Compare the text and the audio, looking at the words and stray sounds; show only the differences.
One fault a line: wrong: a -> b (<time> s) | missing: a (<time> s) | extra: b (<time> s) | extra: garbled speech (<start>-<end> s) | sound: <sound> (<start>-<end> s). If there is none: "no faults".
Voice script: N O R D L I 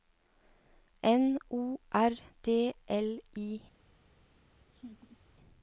sound: laugh (4.7-5.2 s)